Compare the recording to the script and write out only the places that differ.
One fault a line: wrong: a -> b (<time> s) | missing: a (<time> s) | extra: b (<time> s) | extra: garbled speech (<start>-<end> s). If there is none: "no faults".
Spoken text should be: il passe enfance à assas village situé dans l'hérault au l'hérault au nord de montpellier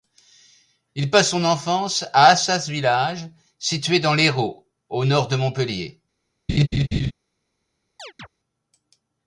extra: son (1.3 s)
missing: l'hérault au (5.0 s)